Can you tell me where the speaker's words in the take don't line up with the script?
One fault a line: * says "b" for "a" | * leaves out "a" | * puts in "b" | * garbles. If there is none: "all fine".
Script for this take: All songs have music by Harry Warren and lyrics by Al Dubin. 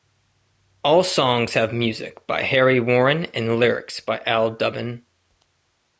all fine